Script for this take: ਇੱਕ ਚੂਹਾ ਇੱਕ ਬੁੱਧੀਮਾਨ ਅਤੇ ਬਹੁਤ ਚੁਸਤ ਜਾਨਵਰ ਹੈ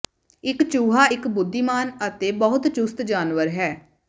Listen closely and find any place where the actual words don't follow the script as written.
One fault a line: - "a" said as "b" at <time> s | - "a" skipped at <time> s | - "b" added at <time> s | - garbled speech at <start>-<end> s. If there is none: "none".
none